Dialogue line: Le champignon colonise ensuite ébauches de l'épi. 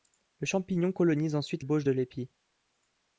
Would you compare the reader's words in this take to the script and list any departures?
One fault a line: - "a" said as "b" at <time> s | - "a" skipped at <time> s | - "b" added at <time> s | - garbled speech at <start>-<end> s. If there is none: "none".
none